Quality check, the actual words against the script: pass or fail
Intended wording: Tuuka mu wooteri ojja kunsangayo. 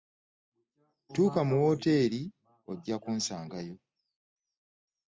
pass